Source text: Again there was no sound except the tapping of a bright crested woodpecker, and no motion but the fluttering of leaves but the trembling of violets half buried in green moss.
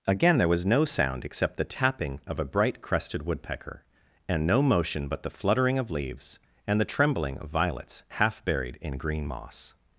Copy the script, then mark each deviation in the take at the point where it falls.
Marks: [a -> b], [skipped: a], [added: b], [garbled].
Again there was no sound except the tapping of a bright crested woodpecker, and no motion but the fluttering of leaves [but -> and] the trembling of violets half buried in green moss.